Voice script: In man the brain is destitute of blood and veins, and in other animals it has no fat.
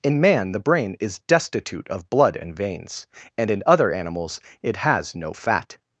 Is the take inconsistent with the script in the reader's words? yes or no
no